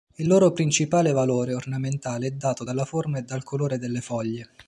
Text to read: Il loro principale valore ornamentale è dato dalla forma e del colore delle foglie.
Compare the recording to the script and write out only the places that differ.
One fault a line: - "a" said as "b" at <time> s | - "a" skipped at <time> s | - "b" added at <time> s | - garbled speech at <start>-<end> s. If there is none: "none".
- "del" said as "dal" at 3.2 s